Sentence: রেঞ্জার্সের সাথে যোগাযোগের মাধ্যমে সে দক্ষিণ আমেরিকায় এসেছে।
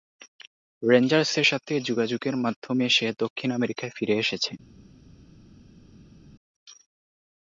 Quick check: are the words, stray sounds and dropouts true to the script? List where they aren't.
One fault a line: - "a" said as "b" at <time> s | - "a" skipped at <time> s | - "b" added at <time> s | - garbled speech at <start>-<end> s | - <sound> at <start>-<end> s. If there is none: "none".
- "ফিরে" added at 4.0 s